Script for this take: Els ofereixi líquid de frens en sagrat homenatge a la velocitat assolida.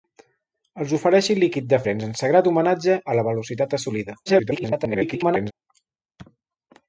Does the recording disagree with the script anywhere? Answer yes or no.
yes